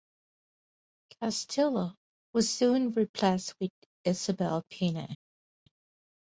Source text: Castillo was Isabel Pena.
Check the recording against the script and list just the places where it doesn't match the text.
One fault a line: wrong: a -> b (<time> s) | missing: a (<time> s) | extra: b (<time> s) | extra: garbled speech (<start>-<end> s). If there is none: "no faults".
extra: soon replaced with (2.5 s)